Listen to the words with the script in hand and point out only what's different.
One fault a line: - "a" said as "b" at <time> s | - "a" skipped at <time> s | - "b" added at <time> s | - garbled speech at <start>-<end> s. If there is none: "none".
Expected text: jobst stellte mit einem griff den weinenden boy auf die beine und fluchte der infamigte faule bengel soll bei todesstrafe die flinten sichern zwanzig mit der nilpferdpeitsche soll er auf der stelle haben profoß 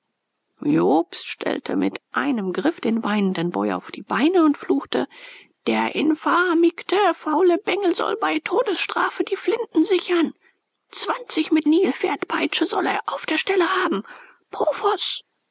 - "der" skipped at 11.7 s